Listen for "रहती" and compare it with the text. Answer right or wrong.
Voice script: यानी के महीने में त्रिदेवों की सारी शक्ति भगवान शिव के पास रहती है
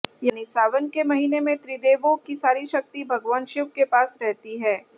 right